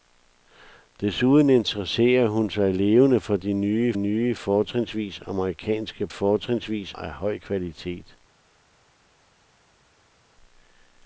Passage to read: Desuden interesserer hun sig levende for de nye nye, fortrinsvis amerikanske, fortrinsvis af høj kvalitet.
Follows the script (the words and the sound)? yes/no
yes